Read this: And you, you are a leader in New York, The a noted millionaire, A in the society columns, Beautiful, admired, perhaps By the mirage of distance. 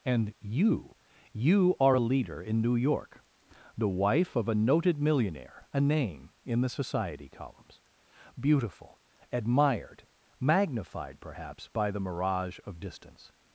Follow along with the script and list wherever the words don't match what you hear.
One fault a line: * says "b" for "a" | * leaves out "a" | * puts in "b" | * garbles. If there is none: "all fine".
* puts in "wife of"
* puts in "name"
* puts in "magnified"